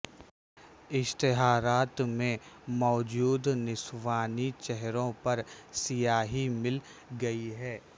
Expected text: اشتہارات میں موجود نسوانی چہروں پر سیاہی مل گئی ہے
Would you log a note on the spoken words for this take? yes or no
no